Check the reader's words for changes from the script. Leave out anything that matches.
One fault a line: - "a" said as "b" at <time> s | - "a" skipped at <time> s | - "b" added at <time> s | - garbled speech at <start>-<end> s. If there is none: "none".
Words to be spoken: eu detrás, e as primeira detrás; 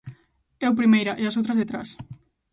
- "detrás" said as "primeira" at 0.8 s
- "primeira" said as "outras" at 1.4 s